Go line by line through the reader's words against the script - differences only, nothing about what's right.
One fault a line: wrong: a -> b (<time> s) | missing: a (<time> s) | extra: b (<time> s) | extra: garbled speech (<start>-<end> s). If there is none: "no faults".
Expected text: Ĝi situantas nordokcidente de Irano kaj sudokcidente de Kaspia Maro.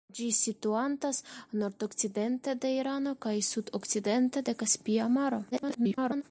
extra: garbled speech (5.5-6.2 s)